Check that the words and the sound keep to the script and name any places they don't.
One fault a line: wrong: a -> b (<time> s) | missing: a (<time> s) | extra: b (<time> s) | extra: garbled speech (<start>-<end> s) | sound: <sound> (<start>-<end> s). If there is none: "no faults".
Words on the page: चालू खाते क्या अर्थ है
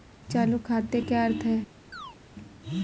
sound: chirp (1.9-2.2 s)